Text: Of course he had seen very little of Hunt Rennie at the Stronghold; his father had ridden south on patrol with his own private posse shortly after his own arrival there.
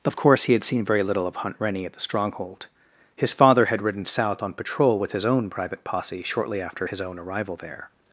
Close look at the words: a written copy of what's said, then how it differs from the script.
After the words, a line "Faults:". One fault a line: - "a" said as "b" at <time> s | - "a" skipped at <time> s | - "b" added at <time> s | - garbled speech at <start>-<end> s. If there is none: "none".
Of course he had seen very little of Hunt Rennie at the Stronghold; his father had ridden south on patrol with his own private posse shortly after his own arrival there.
Faults:
none